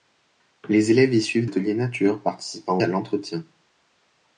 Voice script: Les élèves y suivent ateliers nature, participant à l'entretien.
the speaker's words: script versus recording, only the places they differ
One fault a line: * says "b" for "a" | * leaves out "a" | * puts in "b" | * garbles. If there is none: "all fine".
all fine